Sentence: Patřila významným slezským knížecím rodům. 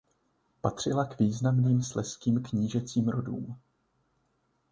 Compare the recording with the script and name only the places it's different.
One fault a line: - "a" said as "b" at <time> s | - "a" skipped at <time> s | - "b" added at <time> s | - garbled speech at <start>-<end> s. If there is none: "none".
- "k" added at 1.0 s